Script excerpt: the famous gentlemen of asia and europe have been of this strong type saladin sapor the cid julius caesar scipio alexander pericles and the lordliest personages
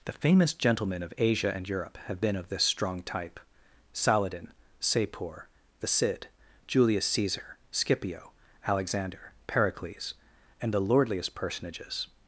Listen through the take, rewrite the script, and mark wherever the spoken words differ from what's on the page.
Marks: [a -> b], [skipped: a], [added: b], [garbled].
the famous gentlemen of asia and europe have been of this strong type saladin sapor the cid julius caesar scipio alexander pericles and the lordliest personages